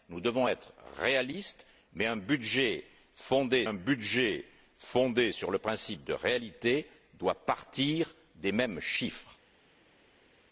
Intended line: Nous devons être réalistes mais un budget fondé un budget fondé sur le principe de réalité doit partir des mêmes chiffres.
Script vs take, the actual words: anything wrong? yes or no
no